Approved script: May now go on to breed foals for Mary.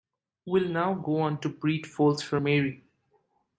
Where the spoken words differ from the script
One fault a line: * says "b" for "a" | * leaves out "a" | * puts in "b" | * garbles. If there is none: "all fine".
* says "Will" for "May"